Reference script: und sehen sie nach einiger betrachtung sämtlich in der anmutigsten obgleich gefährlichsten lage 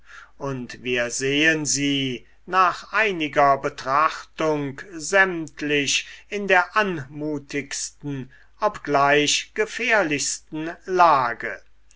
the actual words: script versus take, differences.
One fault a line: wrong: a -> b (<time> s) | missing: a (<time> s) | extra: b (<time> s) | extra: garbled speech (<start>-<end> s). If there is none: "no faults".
extra: wir (0.8 s)